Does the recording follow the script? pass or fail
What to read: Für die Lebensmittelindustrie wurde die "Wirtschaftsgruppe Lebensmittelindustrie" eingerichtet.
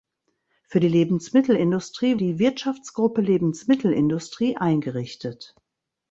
fail